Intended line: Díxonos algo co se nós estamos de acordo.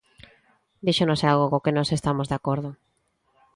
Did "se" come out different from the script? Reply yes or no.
yes